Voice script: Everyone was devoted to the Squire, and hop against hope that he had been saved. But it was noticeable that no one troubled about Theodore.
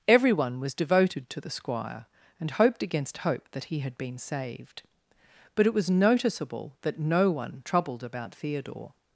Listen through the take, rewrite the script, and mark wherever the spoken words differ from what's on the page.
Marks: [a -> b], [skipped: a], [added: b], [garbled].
Everyone was devoted to the Squire, and [hop -> hoped] against hope that he had been saved. But it was noticeable that no one troubled about Theodore.